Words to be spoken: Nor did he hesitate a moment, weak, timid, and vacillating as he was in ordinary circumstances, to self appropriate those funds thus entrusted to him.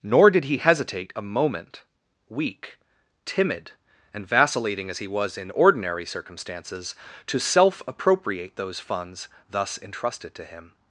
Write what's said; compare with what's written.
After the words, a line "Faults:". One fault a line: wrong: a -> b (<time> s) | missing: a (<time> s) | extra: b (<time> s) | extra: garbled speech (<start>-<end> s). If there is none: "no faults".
Nor did he hesitate a moment, weak, timid, and vacillating as he was in ordinary circumstances, to self appropriate those funds thus entrusted to him.
Faults:
no faults